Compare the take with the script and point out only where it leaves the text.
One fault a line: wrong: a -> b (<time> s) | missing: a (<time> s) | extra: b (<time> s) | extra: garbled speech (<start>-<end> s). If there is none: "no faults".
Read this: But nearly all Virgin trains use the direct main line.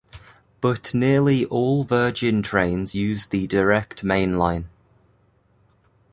no faults